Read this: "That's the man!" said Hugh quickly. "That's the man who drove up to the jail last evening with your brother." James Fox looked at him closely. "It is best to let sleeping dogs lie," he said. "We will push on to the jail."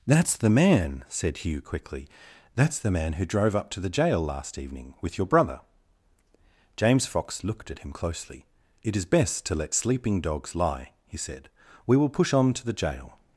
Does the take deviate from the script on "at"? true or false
false